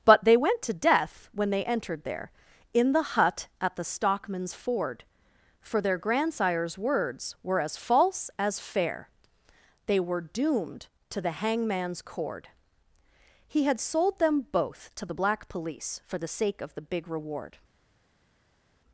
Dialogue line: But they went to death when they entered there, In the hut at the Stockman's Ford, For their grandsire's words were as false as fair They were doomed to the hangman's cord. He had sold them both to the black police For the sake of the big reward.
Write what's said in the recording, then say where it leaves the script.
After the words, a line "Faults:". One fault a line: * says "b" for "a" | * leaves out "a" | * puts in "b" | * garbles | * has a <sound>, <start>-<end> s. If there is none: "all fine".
But they went to death when they entered there, In the hut at the Stockman's Ford, For their grandsire's words were as false as fair They were doomed to the hangman's cord. He had sold them both to the black police For the sake of the big reward.
Faults:
all fine